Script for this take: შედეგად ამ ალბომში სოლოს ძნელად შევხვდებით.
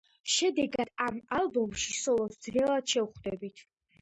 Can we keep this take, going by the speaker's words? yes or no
yes